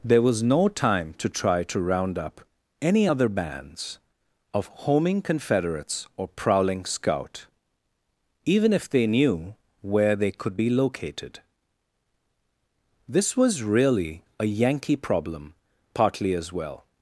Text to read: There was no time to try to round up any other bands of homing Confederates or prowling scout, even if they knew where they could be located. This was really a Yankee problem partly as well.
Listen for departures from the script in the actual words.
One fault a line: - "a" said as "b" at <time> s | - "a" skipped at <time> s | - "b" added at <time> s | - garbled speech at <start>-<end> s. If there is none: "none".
none